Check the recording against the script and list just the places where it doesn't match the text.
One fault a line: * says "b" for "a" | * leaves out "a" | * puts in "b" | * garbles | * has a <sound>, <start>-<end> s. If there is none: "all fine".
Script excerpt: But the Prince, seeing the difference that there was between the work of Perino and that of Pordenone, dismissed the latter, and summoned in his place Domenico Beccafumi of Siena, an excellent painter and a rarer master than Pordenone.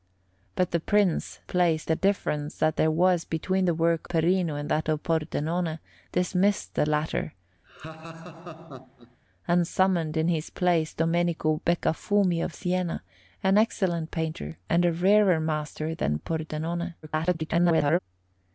* says "place" for "seeing"
* leaves out "of"
* has a laugh, 7.6-9.2 s
* garbles